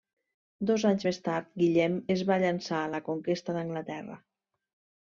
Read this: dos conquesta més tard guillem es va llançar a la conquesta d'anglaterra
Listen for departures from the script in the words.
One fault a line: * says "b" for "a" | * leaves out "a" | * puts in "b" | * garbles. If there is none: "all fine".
* says "anys" for "conquesta"